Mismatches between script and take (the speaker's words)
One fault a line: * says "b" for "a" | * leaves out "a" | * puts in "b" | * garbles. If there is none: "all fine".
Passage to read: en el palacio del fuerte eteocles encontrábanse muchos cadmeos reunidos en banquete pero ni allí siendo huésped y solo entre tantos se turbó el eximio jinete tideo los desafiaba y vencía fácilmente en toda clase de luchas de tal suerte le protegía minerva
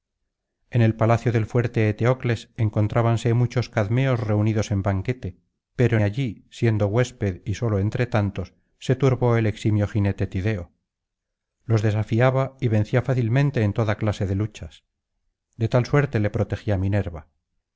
* leaves out "ni"